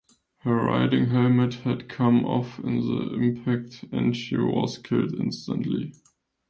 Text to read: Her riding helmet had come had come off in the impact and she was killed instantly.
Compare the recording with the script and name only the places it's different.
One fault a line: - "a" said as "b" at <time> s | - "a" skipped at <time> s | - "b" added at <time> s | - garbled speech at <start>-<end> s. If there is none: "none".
- "had come" skipped at 2.2 s